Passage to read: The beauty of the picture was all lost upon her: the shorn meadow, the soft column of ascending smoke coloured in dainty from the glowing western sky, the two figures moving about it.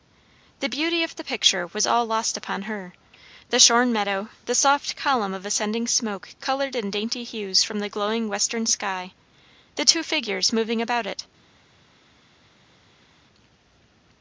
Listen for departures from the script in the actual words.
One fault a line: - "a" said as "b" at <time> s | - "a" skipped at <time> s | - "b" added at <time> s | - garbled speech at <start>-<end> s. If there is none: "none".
- "hues" added at 7.2 s